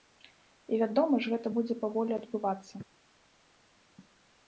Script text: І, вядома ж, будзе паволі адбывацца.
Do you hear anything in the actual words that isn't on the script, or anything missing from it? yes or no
yes